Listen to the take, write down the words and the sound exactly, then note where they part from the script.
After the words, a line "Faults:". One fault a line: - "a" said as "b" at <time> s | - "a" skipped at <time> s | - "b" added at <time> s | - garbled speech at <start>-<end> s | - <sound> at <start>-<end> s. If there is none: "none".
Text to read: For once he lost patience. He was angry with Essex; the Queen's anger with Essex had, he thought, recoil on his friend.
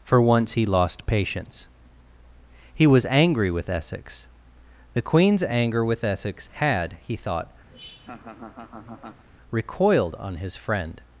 For once he lost patience. He was angry with Essex; the Queen's anger with Essex had, he thought, recoiled on his friend.
Faults:
- laugh at 7.7-9.2 s
- "recoil" said as "recoiled" at 9.5 s